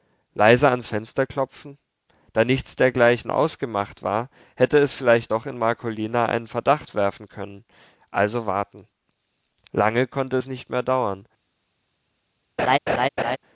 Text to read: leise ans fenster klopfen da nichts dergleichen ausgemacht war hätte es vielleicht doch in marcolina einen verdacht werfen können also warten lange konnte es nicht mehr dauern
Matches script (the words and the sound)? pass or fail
fail